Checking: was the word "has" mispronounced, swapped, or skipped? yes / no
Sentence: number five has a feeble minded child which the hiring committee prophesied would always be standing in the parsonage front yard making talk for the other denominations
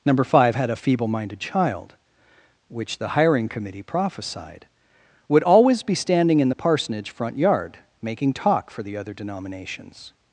yes